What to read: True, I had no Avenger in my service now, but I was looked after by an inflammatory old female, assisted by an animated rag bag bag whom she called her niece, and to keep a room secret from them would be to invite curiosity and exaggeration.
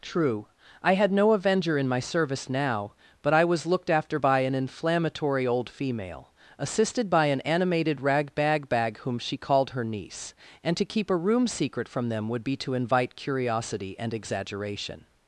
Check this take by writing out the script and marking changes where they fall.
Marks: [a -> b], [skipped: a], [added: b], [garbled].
True, I had no Avenger in my service now, but I was looked after by an inflammatory old female, assisted by an animated rag bag bag whom she called her niece, and to keep a room secret from them would be to invite curiosity and exaggeration.